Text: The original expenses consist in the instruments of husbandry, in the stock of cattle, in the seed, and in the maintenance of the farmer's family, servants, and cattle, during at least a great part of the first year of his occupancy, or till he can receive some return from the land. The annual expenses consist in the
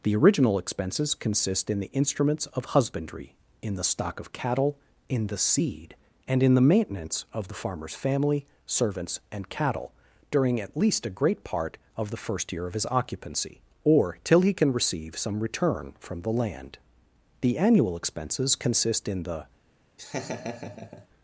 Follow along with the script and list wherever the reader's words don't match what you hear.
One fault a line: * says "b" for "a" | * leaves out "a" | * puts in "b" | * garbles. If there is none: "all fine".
all fine